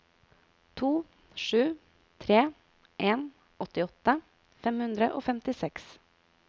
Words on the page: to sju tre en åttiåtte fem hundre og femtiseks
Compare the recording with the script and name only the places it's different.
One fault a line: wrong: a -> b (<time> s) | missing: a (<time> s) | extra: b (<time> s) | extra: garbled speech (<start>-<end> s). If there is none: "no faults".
no faults